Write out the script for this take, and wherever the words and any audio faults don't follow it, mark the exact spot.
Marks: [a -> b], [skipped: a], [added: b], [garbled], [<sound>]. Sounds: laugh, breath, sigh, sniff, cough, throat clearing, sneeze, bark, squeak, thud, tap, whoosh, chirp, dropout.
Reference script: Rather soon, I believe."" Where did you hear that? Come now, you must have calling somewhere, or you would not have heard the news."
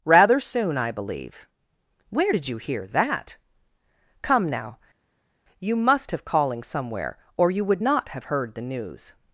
Rather soon, I believe."" Where did you hear that? Come now, you must have calling somewhere, or you would not have heard the news."